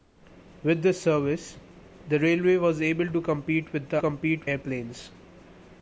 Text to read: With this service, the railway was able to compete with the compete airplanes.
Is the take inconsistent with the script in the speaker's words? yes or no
no